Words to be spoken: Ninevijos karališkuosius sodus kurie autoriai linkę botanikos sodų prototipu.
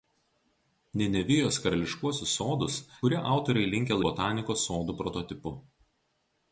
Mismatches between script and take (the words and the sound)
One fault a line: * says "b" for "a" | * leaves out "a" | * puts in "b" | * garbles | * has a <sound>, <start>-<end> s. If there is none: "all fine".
all fine